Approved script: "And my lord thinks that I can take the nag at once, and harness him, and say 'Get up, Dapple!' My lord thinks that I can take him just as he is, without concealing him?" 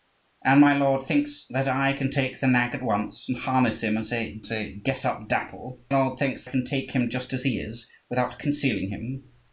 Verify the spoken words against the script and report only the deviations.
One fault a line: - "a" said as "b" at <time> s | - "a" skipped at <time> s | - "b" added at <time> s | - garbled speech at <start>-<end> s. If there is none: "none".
- "say" added at 4.4 s
- "My" skipped at 5.8 s
- "that I" skipped at 6.5 s